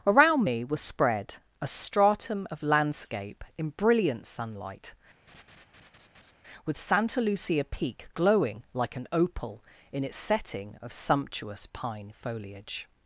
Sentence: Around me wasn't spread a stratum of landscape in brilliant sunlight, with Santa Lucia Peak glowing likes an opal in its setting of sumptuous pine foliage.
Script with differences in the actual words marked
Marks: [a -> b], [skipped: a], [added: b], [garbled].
Around me [wasn't -> was] spread a stratum of landscape in brilliant sunlight, with Santa Lucia Peak glowing [likes -> like] an opal in its setting of sumptuous pine foliage.